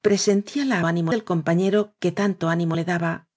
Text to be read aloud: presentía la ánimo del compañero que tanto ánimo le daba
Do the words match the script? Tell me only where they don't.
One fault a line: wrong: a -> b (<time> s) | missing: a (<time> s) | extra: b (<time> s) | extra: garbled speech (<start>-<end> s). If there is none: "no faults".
no faults